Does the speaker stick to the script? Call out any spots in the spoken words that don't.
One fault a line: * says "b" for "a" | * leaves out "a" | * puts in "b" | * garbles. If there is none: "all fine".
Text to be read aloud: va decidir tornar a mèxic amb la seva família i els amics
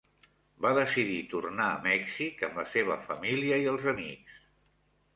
all fine